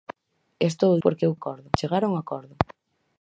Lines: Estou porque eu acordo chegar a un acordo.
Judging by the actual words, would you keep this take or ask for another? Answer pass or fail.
pass